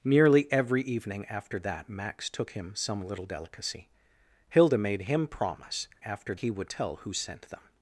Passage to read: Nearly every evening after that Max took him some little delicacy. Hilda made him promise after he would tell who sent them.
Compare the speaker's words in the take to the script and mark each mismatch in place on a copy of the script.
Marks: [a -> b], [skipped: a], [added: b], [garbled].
Nearly every evening after that Max took him some little delicacy. Hilda made him promise after he would tell who sent them.